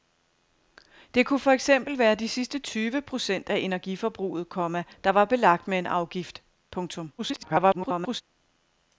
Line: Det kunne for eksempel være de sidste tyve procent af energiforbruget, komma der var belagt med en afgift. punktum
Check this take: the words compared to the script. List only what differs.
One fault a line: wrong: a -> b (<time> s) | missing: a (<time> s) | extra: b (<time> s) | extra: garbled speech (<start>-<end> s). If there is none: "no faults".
extra: garbled speech (7.2-8.2 s)